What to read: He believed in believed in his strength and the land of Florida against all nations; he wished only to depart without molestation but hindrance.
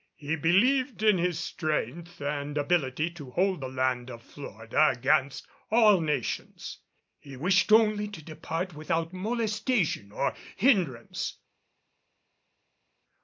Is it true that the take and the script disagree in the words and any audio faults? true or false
true